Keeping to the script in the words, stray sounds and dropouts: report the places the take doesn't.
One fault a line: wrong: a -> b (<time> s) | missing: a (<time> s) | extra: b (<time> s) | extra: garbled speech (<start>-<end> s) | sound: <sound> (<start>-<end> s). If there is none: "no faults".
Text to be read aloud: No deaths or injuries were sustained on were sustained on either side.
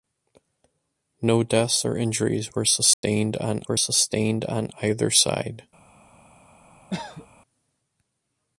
sound: dropout (2.9-3.0 s)
sound: cough (6.9-7.3 s)